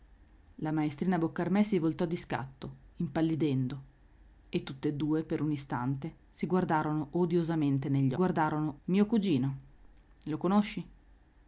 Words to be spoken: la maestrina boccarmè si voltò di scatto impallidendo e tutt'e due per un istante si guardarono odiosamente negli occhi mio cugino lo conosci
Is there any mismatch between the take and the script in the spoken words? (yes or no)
yes